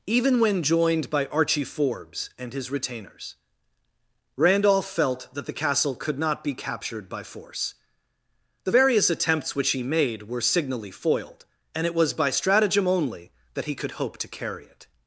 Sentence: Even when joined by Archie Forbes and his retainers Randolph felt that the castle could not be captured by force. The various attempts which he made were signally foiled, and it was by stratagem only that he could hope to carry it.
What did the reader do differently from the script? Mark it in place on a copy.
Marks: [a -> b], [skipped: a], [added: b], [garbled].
Even when joined by Archie Forbes and his retainers Randolph felt that the castle could not be captured by force. The various attempts which he made were signally foiled, and it was by stratagem only that he could hope to carry it.